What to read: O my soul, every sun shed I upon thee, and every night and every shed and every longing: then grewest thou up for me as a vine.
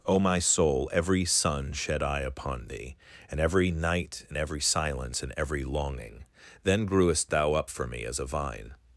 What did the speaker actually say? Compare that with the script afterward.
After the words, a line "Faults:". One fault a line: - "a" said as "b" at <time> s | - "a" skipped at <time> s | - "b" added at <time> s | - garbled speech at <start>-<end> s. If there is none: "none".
O my soul, every sun shed I upon thee, and every night and every silence and every longing: then grewest thou up for me as a vine.
Faults:
- "shed" said as "silence" at 4.6 s